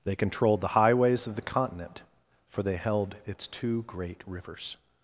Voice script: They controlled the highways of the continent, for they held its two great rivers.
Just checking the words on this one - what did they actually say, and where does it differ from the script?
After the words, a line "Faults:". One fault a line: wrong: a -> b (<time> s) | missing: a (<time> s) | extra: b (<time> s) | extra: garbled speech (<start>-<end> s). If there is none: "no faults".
They controlled the highways of the continent, for they held its two great rivers.
Faults:
no faults